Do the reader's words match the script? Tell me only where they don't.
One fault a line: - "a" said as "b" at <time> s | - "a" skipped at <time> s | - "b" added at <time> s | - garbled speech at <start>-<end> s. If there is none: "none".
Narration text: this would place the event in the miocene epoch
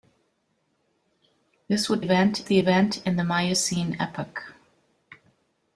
- "place" said as "event" at 2.0 s